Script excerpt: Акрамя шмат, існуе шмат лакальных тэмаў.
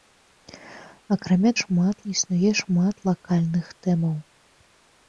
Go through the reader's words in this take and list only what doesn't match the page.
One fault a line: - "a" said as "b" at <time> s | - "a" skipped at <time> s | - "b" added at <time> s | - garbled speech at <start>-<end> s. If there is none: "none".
none